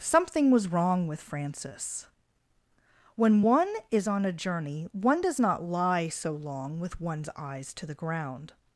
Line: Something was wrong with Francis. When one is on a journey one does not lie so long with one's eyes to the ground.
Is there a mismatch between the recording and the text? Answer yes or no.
no